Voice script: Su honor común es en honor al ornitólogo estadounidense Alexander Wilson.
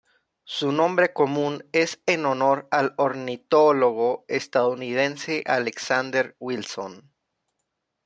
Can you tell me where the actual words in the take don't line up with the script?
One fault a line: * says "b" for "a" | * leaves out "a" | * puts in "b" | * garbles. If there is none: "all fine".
* says "nombre" for "honor"